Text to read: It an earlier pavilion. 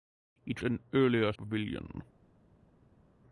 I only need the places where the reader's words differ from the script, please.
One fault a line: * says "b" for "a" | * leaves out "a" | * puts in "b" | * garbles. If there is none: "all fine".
all fine